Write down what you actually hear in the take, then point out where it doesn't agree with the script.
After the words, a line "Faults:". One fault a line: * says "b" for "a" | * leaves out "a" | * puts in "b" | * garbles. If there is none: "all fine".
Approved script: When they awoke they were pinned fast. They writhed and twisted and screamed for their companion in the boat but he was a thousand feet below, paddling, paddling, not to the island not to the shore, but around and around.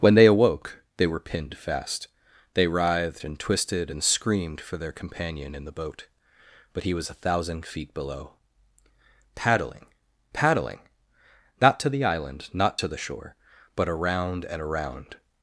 When they awoke they were pinned fast. They writhed and twisted and screamed for their companion in the boat but he was a thousand feet below, paddling, paddling, not to the island not to the shore, but around and around.
Faults:
all fine